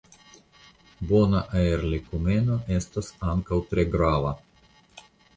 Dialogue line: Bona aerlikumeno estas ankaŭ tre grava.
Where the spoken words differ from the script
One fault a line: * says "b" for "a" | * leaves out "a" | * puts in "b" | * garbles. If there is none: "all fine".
all fine